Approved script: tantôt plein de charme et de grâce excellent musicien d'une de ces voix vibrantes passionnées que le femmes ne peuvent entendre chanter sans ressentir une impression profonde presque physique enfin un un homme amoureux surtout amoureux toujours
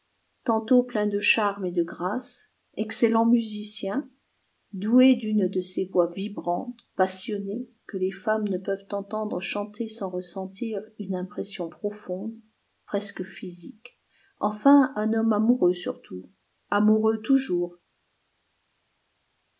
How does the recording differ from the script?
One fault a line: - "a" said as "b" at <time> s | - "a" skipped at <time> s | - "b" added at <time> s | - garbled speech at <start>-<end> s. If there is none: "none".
- "doué" added at 4.7 s
- "le" said as "les" at 8.0 s
- "un" skipped at 15.1 s